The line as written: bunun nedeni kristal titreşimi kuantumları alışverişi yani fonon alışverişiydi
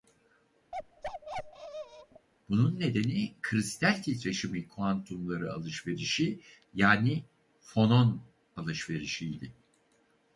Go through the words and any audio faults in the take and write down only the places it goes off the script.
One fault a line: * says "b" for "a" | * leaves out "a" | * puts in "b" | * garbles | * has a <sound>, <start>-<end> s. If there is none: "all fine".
* has a bark, 0.7-2.3 s